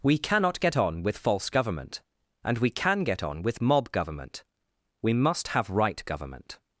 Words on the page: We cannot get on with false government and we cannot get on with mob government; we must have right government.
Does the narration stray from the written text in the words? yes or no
yes